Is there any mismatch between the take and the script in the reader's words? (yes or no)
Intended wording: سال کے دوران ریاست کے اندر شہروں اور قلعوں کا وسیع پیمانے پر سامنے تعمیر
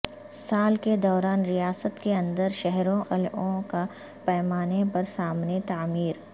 yes